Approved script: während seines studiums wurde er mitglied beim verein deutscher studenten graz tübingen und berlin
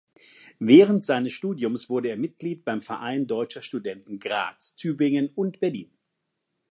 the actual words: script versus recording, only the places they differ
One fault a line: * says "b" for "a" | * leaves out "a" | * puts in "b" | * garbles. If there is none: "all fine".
all fine